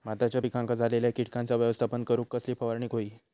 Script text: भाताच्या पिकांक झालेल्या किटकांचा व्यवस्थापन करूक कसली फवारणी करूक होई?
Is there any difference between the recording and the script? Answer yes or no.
yes